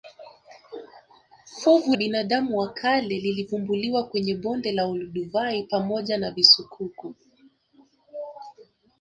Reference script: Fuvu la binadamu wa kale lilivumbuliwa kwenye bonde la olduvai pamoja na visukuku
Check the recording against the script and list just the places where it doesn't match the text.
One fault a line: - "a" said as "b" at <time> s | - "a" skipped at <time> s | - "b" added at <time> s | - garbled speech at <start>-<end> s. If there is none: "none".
- "la" skipped at 1.9 s